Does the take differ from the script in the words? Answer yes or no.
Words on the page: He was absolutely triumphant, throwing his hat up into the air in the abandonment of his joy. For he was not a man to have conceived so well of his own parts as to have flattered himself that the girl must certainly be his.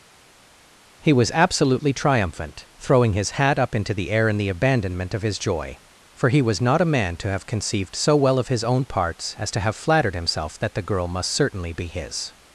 no